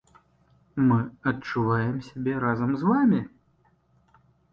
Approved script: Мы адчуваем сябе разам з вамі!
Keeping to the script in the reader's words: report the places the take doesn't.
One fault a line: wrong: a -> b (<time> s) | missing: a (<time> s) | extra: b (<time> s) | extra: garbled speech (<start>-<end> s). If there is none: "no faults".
no faults